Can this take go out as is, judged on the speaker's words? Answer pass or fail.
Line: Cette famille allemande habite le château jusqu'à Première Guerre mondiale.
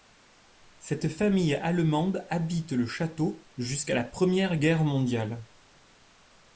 fail